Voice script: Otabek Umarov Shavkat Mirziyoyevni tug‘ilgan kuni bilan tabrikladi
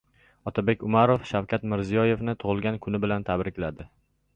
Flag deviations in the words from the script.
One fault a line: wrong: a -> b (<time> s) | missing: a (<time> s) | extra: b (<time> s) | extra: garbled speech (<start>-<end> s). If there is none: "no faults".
no faults